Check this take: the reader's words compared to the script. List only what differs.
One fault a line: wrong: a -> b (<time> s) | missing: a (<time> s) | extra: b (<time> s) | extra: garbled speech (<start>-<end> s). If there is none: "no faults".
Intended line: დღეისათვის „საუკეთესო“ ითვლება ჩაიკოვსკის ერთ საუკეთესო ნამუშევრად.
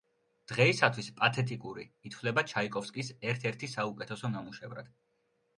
wrong: საუკეთესო -> პათეტიკური (1.2 s)
extra: ერთი (3.5 s)